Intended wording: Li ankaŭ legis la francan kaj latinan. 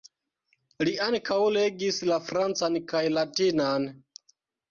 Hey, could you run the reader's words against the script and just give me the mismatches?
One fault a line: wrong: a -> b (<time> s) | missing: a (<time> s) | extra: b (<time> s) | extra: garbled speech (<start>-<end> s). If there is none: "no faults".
no faults